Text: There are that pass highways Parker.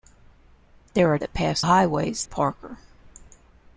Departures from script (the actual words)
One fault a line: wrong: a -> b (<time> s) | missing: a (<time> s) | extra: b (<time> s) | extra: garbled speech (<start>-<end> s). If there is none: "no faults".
no faults